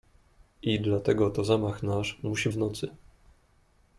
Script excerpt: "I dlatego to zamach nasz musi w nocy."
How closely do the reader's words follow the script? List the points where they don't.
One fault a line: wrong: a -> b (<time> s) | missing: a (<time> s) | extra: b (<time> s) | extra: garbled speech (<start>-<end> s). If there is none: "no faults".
no faults